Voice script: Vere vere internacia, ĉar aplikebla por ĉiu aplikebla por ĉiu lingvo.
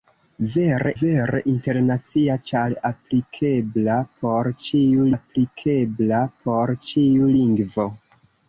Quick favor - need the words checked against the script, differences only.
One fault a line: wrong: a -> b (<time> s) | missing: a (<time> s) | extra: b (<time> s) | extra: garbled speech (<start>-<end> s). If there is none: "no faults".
no faults